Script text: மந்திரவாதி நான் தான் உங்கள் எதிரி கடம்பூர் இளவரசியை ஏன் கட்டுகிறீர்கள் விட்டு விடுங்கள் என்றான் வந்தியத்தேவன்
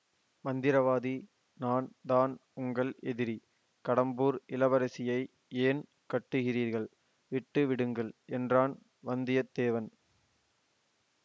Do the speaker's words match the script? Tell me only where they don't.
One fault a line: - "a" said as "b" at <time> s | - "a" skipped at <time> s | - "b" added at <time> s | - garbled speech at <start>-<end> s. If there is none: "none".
none